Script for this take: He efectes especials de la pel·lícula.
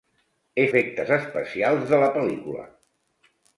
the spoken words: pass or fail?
pass